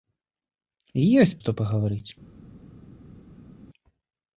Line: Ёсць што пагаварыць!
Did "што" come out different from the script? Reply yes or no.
no